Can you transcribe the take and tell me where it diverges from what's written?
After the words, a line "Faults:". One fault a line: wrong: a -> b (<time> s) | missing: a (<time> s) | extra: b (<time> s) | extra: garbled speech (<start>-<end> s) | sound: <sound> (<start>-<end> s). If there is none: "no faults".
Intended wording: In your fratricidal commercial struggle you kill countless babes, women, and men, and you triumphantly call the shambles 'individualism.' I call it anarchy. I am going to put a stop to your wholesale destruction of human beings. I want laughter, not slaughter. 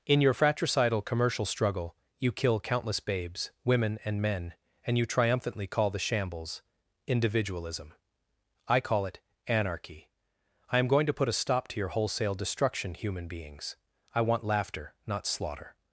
In your fratricidal commercial struggle you kill countless babes, women, and men, and you triumphantly call the shambles 'individualism.' I call it anarchy. I am going to put a stop to your wholesale destruction human beings. I want laughter, not slaughter.
Faults:
missing: of (12.9 s)